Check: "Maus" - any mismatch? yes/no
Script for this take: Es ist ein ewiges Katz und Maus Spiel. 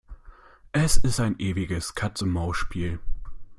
no